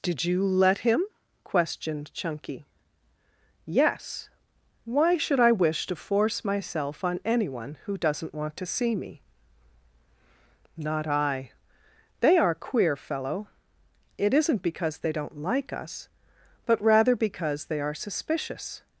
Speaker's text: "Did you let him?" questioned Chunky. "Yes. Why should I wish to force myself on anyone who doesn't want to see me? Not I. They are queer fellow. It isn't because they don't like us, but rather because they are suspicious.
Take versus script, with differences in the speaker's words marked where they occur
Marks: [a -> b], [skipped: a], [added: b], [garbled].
"Did you let him?" questioned Chunky. "Yes. Why should I wish to force myself on anyone who doesn't want to see me? Not I. They are queer fellow. It isn't because they don't like us, but rather because they are suspicious.